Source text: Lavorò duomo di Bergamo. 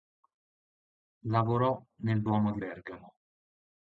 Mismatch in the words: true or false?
true